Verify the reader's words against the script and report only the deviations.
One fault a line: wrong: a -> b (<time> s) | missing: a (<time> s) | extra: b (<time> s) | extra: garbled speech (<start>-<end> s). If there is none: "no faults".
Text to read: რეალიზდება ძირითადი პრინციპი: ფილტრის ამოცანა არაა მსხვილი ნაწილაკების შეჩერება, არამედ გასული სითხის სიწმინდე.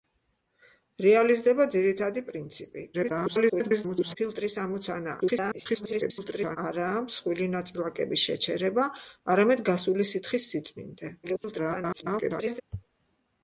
extra: garbled speech (2.9-4.2 s)
extra: garbled speech (5.2-6.6 s)
extra: garbled speech (11.2-12.6 s)